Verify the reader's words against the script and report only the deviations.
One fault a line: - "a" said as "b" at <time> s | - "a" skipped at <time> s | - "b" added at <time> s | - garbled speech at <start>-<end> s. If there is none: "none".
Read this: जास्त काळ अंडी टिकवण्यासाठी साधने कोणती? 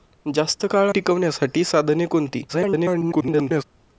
- "अंडी" skipped at 0.9 s
- garbled speech at 2.5-3.6 s